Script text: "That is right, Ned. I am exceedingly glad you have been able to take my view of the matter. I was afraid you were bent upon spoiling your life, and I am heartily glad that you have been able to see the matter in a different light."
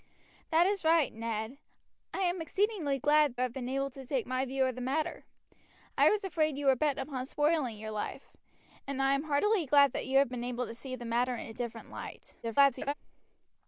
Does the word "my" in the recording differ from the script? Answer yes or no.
no